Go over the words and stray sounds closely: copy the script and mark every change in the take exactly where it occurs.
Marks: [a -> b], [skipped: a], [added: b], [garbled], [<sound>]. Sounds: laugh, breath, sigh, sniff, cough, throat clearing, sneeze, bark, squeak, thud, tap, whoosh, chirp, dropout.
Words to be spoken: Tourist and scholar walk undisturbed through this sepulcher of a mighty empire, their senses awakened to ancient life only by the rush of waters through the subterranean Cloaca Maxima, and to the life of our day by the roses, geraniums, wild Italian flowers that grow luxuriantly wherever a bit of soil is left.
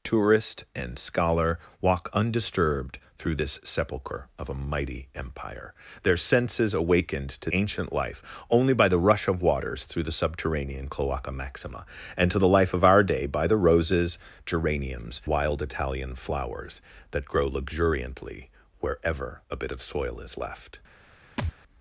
Tourist and scholar walk undisturbed through this sepulcher of a mighty empire, their senses awakened to ancient life only by the rush of waters through the subterranean Cloaca Maxima, and to the life of our day by the roses, geraniums, wild Italian flowers that grow luxuriantly wherever a bit of soil is left. [thud]